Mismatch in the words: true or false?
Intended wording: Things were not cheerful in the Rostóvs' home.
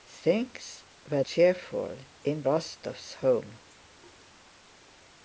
true